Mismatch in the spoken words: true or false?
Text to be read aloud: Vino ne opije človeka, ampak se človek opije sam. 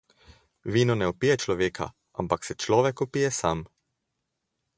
false